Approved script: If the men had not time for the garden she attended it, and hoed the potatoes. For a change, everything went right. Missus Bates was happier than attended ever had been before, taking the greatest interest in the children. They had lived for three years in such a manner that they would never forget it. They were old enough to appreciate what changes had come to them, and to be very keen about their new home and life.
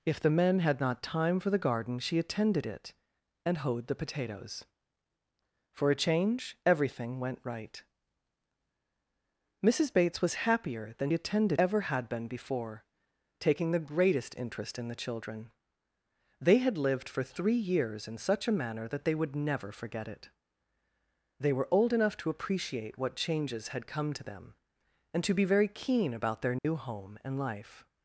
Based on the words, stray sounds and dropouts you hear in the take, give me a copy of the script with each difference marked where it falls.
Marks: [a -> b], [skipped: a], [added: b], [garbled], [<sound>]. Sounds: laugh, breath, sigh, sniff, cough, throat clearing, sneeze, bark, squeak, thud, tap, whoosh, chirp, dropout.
If the men had not time for the garden she attended it, and hoed the potatoes. For a change, everything went right. Missus Bates was happier than attended ever had been before, taking the greatest interest in the children. They had lived for three years in such a manner that they would never forget it. They were old enough to appreciate what changes had come to them, and to be very keen about their new [dropout] home and life.